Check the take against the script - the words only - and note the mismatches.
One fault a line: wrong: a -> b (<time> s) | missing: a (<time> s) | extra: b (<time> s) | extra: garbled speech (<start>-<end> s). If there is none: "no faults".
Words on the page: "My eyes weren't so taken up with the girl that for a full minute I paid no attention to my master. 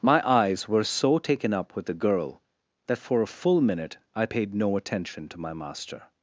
wrong: weren't -> were (0.7 s)